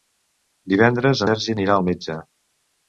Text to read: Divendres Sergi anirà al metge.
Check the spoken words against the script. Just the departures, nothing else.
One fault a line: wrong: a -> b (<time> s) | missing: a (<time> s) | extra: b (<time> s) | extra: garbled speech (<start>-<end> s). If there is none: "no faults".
no faults